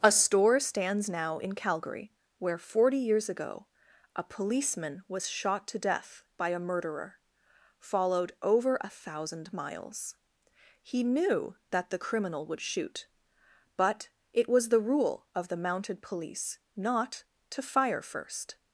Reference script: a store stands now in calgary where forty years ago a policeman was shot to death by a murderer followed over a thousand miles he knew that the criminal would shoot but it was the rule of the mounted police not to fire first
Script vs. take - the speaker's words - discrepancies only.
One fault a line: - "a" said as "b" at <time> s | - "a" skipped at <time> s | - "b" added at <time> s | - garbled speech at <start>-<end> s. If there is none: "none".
none